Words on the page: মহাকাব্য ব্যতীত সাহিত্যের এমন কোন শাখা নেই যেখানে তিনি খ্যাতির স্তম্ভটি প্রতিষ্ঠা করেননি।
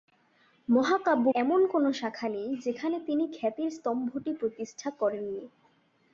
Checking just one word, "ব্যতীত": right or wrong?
wrong